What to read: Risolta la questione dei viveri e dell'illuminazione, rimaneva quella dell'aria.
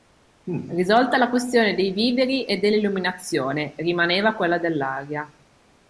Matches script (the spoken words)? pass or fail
pass